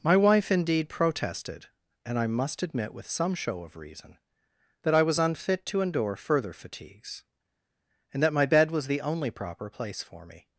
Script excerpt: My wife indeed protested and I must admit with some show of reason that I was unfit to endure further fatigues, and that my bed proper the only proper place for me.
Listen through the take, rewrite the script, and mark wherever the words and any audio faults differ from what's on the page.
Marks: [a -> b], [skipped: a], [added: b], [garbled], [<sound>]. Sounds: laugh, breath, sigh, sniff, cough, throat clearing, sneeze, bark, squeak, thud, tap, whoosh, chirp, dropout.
My wife indeed protested and I must admit with some show of reason that I was unfit to endure further fatigues, and that my bed [proper -> was] the only proper place for me.